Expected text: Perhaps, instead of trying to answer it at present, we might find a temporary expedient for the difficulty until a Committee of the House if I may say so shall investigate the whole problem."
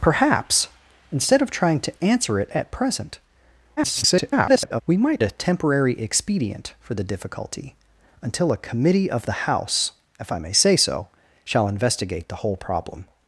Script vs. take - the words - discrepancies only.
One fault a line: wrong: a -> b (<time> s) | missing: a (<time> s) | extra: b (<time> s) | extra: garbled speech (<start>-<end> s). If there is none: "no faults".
extra: garbled speech (3.8-4.8 s)
missing: find (5.2 s)